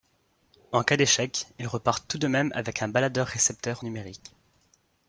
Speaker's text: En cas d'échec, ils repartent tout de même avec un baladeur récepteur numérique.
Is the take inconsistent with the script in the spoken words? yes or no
no